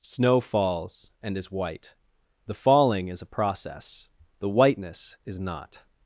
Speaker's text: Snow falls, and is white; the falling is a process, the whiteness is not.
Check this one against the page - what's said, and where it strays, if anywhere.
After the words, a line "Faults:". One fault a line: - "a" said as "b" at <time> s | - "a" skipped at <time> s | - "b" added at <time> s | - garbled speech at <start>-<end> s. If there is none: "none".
Snow falls, and is white; the falling is a process, the whiteness is not.
Faults:
none